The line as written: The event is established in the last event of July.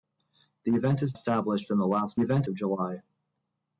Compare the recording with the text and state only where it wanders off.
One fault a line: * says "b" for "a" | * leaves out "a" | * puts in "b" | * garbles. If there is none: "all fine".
all fine